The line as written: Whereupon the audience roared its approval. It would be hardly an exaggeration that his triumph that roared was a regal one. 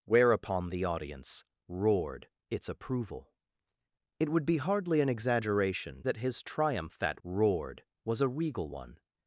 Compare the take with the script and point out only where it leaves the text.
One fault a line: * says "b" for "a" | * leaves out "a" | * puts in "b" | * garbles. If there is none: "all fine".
all fine